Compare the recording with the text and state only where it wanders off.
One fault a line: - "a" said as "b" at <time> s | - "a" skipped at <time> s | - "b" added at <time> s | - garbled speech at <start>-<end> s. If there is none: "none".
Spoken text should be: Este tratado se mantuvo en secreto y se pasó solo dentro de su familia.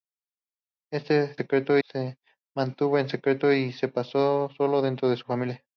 - "tratado" said as "secreto" at 1.3 s